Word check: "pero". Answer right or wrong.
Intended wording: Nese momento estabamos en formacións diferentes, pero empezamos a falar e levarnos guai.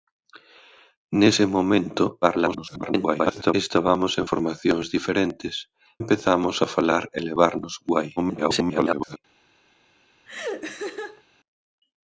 wrong